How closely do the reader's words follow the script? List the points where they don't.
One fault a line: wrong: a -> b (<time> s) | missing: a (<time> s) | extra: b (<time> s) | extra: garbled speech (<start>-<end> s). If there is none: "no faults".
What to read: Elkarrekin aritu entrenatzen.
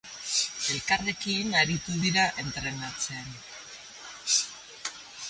extra: dira (2.0 s)